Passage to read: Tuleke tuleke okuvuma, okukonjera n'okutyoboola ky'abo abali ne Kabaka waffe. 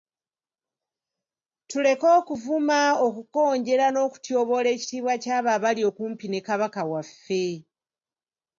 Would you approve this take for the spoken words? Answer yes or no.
no